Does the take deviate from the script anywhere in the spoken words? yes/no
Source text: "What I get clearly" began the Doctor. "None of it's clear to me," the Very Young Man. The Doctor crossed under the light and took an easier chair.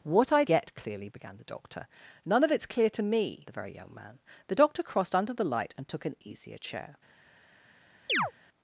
no